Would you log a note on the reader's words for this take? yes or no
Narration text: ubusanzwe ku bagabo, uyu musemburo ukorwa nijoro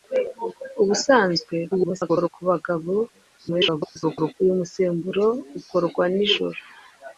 yes